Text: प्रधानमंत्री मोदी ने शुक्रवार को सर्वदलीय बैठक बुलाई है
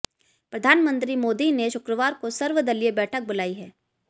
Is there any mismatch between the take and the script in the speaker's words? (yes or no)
no